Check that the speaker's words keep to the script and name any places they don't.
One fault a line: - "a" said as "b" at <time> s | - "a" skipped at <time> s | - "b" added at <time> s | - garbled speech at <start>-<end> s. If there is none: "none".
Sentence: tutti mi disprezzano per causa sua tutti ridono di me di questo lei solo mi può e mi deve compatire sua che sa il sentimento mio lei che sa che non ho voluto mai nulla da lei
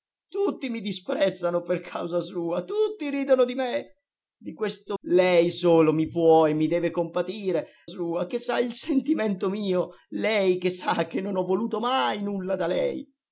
none